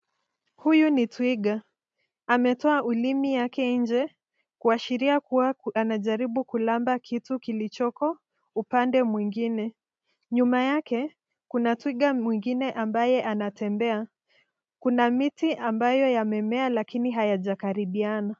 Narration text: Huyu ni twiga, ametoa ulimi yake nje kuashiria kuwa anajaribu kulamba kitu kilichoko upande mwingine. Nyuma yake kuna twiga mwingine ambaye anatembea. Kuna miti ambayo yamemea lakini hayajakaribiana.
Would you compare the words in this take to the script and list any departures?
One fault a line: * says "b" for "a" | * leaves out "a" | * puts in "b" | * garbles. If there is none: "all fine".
all fine